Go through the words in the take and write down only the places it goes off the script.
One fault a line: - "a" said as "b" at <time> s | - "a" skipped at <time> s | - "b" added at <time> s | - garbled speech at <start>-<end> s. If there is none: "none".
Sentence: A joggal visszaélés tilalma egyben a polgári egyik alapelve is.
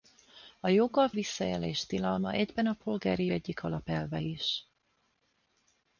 none